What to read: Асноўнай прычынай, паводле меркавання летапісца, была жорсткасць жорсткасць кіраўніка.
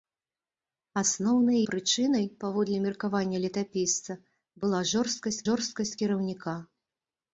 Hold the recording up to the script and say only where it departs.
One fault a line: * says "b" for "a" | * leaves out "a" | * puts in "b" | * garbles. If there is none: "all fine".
all fine